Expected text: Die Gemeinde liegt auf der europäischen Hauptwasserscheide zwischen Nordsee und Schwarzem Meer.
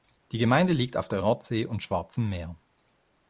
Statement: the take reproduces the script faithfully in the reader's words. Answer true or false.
false